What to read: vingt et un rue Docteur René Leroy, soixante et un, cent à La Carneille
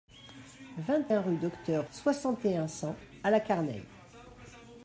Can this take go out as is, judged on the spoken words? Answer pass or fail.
fail